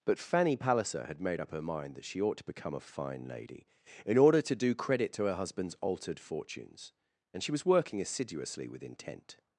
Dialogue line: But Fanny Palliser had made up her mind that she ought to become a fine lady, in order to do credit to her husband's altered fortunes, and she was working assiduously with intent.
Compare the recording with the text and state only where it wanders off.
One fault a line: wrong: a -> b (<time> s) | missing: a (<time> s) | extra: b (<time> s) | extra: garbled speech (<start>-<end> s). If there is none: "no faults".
no faults